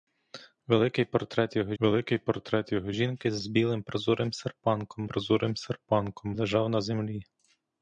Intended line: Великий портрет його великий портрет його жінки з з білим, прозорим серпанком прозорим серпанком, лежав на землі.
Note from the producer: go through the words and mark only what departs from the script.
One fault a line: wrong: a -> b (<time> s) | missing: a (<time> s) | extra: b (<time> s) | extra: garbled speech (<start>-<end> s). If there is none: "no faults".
no faults